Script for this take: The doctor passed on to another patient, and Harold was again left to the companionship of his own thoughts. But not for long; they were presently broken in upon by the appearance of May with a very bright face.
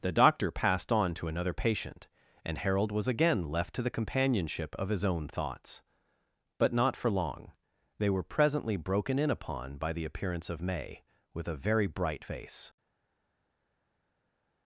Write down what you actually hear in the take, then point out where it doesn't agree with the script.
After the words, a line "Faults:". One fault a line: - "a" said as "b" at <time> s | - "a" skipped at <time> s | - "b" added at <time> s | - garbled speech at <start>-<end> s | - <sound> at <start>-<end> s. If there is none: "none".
The doctor passed on to another patient, and Harold was again left to the companionship of his own thoughts. But not for long; they were presently broken in upon by the appearance of May with a very bright face.
Faults:
none